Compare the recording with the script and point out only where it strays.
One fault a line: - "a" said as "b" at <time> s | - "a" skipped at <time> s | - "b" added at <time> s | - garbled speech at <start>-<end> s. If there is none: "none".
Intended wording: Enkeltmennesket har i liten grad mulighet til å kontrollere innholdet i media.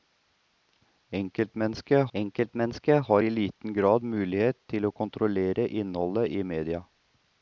- "enkeltmennesket" added at 2.1 s